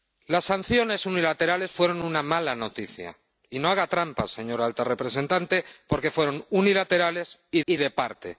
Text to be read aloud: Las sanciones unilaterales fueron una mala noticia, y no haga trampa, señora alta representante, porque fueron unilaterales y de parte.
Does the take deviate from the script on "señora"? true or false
false